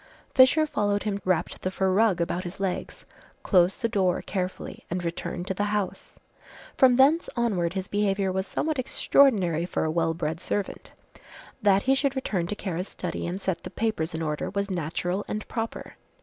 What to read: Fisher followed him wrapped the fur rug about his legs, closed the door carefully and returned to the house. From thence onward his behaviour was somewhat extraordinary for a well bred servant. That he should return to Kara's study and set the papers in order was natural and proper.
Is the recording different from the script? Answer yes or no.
no